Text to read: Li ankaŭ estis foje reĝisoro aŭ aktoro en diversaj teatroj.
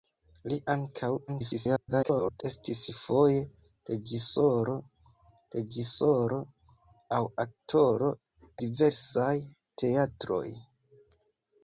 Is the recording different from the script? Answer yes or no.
yes